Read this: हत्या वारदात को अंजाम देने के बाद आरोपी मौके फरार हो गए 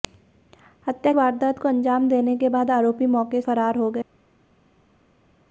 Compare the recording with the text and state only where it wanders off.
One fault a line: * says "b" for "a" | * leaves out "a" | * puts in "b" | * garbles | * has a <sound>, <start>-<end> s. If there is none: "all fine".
all fine